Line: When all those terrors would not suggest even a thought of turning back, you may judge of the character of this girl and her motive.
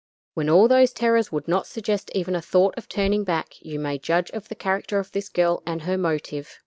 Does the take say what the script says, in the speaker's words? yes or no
yes